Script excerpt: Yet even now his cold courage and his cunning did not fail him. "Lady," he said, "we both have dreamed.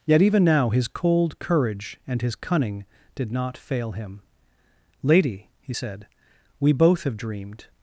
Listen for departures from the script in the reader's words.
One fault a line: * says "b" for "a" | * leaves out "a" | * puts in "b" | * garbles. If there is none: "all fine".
all fine